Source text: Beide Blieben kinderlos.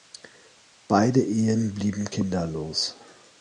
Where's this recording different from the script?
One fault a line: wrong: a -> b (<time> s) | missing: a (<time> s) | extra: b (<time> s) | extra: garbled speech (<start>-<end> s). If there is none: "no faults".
extra: Ehen (1.2 s)